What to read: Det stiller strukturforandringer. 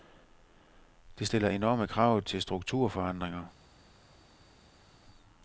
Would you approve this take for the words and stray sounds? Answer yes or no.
no